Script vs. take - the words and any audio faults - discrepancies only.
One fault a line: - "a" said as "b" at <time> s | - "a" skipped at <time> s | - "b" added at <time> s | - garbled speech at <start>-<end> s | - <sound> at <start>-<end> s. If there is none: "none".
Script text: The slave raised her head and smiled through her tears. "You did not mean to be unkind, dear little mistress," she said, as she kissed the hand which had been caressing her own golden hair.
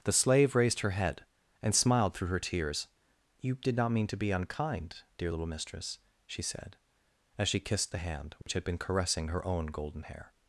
- dropout at 8.4-8.5 s